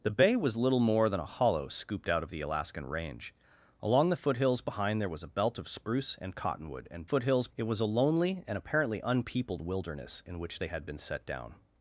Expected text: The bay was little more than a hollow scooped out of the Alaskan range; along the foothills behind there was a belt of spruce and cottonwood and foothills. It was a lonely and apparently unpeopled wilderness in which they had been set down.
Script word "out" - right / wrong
right